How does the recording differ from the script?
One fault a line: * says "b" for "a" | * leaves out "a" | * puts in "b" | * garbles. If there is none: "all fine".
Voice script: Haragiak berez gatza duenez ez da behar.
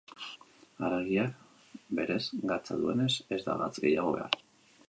* puts in "gatz gehiago"